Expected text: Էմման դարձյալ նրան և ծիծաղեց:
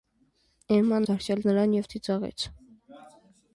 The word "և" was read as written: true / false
true